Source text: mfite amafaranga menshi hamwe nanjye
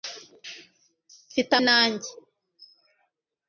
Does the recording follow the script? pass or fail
fail